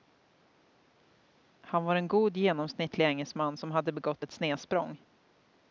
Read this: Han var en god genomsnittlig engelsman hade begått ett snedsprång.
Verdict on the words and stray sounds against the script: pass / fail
fail